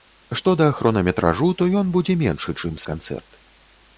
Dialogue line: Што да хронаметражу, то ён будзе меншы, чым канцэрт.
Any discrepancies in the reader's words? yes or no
no